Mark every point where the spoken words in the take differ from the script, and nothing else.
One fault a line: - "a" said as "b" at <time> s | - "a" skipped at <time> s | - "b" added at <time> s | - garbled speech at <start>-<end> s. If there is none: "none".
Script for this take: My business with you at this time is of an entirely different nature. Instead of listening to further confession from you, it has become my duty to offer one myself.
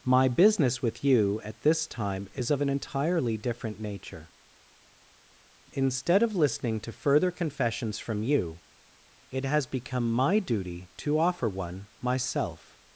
- "confession" said as "confessions" at 7.3 s